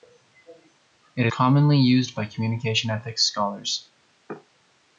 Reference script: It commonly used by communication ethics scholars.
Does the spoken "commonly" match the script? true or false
true